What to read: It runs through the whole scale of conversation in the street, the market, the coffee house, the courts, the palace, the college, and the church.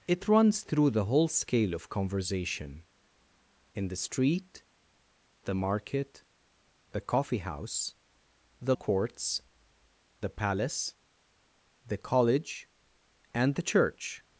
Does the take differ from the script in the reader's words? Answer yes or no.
no